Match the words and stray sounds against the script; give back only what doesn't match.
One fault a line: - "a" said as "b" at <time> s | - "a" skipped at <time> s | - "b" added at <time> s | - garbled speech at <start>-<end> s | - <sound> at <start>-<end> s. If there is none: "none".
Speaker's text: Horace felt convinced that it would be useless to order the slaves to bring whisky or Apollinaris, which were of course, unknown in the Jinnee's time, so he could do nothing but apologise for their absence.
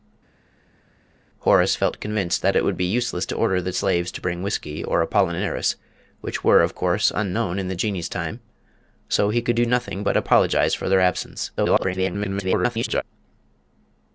- garbled speech at 11.6-13.0 s